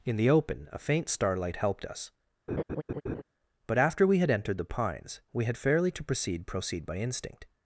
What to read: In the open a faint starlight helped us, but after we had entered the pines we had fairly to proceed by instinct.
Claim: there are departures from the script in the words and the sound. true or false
true